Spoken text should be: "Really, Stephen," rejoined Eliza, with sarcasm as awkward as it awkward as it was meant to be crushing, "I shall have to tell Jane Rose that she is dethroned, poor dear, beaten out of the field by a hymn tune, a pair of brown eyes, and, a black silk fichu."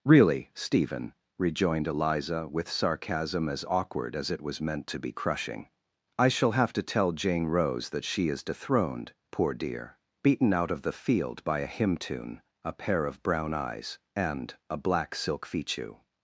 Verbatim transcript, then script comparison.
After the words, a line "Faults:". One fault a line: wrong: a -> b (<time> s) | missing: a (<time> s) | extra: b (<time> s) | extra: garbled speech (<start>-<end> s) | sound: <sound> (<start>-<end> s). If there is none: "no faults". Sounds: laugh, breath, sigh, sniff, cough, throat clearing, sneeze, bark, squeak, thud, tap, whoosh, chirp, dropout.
"Really, Stephen," rejoined Eliza, with sarcasm as awkward as it was meant to be crushing, "I shall have to tell Jane Rose that she is dethroned, poor dear, beaten out of the field by a hymn tune, a pair of brown eyes, and, a black silk fichu."
Faults:
missing: awkward as it (4.4 s)